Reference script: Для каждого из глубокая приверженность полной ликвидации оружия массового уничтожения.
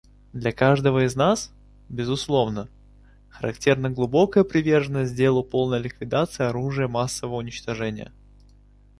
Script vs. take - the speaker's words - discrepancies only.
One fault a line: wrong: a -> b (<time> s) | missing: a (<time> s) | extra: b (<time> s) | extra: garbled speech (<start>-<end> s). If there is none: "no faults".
extra: нас безусловно характерна (1.1 s)
extra: делу (5.2 s)